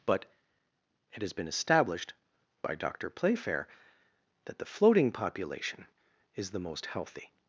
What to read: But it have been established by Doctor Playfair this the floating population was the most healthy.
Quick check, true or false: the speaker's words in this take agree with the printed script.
false